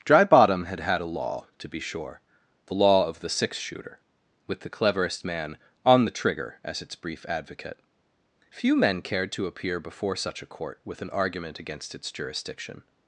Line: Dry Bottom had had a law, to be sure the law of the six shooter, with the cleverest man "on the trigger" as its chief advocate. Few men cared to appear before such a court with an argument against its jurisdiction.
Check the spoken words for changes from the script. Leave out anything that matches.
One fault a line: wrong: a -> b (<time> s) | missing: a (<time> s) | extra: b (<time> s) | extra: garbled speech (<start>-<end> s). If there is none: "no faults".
wrong: chief -> brief (6.9 s)